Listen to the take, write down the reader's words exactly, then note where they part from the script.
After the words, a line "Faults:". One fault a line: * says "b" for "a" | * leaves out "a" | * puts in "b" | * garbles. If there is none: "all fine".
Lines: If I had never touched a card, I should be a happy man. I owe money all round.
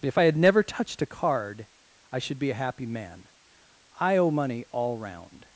If I had never touched a card, I should be a happy man. I owe money all round.
Faults:
all fine